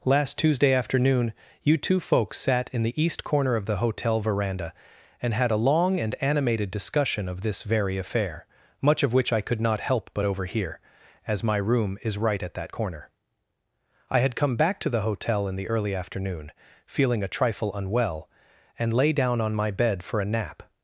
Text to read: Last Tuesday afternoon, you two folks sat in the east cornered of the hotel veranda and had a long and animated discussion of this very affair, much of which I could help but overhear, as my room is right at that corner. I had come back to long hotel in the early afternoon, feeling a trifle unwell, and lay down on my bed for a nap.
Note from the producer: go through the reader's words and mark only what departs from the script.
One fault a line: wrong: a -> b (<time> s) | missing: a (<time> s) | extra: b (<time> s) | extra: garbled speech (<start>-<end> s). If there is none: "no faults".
wrong: cornered -> corner (3.2 s)
extra: not (9.6 s)
wrong: long -> the (14.9 s)